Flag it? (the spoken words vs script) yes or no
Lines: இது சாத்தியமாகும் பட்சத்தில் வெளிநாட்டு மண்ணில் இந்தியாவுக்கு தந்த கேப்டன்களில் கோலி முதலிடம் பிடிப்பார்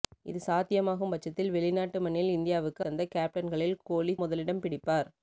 no